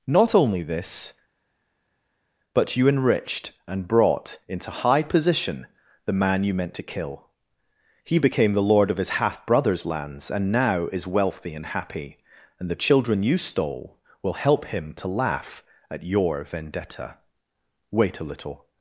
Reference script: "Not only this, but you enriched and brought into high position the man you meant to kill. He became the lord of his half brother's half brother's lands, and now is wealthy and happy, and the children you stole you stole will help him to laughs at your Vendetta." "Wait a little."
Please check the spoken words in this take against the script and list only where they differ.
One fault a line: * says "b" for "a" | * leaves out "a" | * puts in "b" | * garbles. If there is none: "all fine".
* leaves out "half brother's"
* leaves out "you stole"
* says "laugh" for "laughs"